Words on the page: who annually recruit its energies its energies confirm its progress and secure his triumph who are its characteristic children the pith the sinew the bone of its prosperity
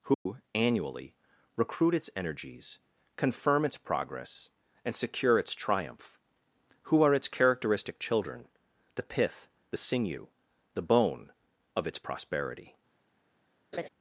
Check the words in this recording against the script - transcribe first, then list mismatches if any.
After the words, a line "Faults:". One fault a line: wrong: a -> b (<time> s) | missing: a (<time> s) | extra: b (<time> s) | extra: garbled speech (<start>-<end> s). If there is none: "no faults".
who annually recruit its energies confirm its progress and secure its triumph who are its characteristic children the pith the sinew the bone of its prosperity
Faults:
missing: its energies (2.8 s)
wrong: his -> its (5.4 s)